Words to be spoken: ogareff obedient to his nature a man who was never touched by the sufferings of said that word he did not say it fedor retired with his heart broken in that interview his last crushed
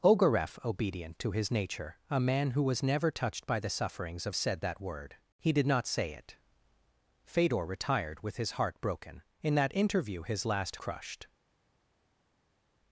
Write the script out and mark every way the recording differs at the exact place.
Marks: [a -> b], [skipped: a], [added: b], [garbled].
ogareff obedient to his nature a man who was never touched by the sufferings of said that word he did not say it fedor retired with his heart broken in that interview his last crushed